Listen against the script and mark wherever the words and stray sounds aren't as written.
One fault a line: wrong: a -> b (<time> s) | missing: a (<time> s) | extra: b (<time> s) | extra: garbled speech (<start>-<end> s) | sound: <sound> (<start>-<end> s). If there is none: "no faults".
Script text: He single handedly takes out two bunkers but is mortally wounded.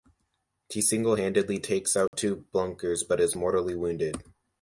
sound: dropout (2.1-2.1 s)